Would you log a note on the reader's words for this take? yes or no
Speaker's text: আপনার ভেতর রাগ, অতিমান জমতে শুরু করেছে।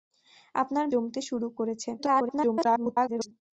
yes